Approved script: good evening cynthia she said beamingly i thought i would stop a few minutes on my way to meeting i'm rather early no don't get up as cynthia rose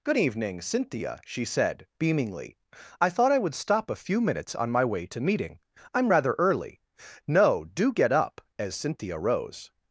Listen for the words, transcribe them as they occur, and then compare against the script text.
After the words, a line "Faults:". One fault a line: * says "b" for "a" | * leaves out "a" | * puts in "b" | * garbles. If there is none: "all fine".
good evening cynthia she said beamingly i thought i would stop a few minutes on my way to meeting i'm rather early no do get up as cynthia rose
Faults:
* says "do" for "don't"